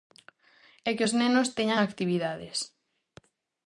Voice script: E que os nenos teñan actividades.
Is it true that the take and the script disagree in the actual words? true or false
false